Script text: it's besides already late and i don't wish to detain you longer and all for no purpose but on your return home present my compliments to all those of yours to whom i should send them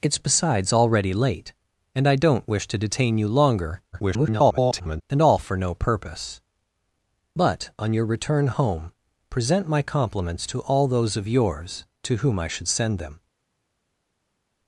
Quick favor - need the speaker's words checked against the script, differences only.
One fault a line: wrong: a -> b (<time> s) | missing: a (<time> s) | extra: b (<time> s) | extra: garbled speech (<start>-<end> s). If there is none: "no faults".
extra: garbled speech (3.9-5.0 s)